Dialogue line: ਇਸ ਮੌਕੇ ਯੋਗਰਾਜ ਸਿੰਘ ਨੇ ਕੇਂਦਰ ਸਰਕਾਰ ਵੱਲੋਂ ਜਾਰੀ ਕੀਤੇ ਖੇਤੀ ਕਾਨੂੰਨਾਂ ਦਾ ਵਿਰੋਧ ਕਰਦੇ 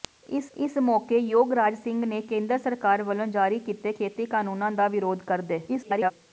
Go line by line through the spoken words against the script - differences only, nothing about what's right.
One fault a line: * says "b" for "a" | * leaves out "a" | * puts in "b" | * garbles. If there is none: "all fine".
* puts in "ਇਸ"
* garbles